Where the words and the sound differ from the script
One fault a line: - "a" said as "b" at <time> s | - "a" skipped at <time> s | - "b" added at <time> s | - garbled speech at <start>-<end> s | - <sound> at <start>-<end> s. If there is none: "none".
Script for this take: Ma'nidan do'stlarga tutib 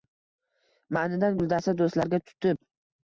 - "guldasta" added at 1.4 s